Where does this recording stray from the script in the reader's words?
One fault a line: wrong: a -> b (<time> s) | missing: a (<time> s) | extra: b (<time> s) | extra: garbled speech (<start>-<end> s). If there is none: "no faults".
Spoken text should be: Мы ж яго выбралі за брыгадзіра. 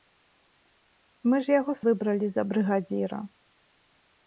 no faults